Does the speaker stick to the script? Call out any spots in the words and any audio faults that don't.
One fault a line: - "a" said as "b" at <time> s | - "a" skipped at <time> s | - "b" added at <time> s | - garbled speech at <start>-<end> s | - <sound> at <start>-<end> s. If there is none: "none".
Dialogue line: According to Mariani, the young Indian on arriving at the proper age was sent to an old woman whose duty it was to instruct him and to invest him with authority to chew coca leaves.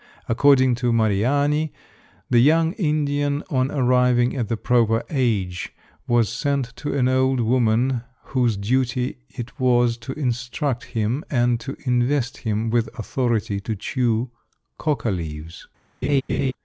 - laugh at 16.0-16.5 s